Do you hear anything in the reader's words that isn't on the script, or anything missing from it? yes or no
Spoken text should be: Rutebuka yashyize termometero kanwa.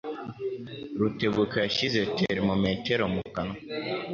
yes